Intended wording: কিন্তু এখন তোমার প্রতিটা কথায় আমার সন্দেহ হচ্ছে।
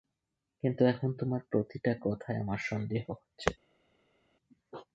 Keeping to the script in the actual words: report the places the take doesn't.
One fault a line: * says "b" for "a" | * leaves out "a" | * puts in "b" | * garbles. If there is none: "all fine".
all fine